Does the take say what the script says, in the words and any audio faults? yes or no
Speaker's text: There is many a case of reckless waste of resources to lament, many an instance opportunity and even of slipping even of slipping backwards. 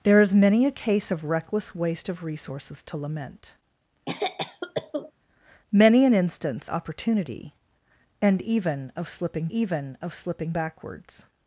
no